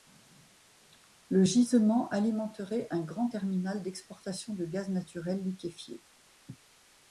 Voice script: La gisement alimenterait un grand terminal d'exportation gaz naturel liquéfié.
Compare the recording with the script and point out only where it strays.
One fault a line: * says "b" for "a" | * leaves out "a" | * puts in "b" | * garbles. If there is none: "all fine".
* says "Le" for "La"
* puts in "de"